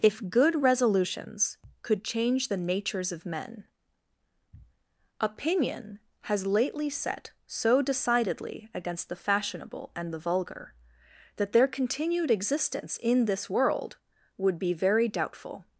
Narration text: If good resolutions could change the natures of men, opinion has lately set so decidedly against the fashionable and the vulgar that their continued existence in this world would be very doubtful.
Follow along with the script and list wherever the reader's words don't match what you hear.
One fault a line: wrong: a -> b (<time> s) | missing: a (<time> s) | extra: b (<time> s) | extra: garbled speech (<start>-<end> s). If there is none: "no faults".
no faults